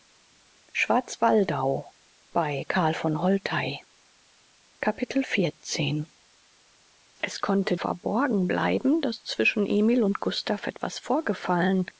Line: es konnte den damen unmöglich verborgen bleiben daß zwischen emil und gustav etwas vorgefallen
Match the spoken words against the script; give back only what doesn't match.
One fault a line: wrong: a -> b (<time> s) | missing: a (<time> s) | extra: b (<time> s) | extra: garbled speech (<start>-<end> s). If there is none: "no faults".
missing: den damen unmöglich (7.8 s)